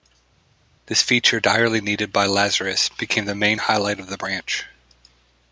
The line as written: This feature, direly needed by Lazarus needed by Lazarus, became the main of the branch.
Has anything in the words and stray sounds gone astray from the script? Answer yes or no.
yes